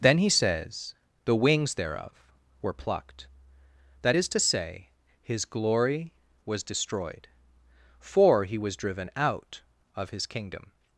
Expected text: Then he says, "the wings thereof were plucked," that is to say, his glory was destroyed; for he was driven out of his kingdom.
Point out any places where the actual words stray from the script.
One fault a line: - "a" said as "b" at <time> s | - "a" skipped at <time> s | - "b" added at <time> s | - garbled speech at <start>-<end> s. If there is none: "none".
none